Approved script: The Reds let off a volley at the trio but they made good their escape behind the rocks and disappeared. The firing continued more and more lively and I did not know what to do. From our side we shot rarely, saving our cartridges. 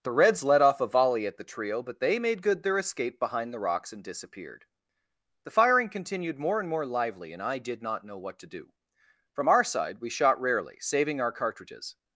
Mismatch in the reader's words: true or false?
false